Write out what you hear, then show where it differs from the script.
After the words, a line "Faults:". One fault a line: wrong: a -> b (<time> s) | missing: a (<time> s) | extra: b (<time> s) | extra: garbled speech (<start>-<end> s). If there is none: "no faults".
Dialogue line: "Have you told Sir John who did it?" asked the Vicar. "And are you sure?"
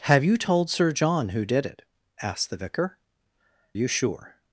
"Have you told Sir John who did it?" asked the Vicar. "You sure?"
Faults:
missing: And are (3.0 s)